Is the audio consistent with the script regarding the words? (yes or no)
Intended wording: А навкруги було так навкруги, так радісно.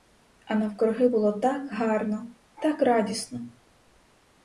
no